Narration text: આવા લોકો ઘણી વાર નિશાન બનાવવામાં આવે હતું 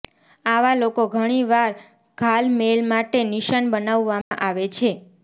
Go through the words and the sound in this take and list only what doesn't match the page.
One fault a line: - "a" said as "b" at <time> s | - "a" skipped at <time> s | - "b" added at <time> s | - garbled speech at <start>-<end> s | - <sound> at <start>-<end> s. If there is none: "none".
- "ઘાલમેલ માટે" added at 2.2 s
- dropout at 4.2-4.3 s
- "હતું" said as "છે" at 4.7 s